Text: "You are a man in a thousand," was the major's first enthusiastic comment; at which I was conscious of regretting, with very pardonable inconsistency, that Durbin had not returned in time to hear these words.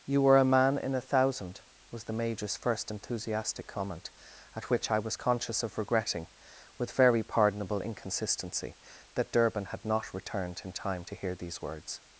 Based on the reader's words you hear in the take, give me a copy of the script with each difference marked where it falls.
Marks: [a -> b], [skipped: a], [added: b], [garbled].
"You [are -> were] a man in a thousand," was the major's first enthusiastic comment; at which I was conscious of regretting, with very pardonable inconsistency, that Durbin had not returned in time to hear these words.